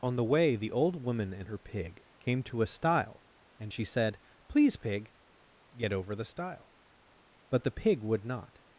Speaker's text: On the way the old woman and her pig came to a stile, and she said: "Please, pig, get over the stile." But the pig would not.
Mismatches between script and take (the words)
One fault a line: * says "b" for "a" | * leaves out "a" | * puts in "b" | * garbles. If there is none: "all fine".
all fine